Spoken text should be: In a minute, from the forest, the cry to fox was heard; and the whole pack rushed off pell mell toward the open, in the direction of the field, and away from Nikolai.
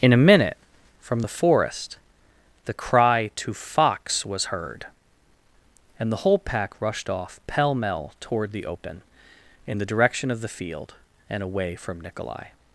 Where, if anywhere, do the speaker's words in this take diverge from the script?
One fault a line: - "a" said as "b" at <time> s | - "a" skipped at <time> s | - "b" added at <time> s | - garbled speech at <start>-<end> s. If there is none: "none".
none